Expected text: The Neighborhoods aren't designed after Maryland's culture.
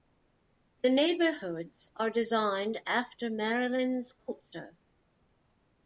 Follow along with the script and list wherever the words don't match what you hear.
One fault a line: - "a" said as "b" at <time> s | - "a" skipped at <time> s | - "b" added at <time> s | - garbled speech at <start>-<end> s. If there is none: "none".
- "aren't" said as "are" at 1.9 s